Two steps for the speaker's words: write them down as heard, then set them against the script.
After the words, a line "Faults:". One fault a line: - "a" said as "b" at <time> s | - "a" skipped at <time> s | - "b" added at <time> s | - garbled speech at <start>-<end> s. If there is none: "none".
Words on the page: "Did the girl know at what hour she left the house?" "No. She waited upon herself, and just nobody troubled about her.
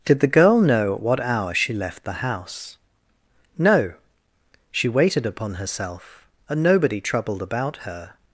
"Did the girl know at what hour she left the house?" "No. She waited upon herself, and nobody troubled about her.
Faults:
- "just" skipped at 6.6 s